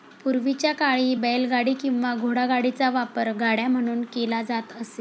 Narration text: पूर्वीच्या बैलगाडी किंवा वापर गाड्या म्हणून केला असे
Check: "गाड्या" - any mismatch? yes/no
no